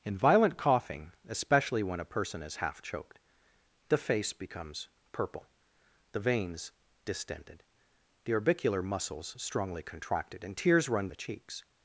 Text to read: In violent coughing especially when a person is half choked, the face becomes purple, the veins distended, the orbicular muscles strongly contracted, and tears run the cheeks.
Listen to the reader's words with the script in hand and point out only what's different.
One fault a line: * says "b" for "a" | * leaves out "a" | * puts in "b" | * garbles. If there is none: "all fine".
all fine